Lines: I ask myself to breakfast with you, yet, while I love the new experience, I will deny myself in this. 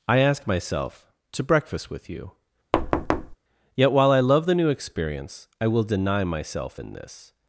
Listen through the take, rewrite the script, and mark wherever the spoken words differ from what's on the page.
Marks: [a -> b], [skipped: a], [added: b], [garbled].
I ask myself to breakfast with you, yet, while I love the new experience, I will deny myself in this.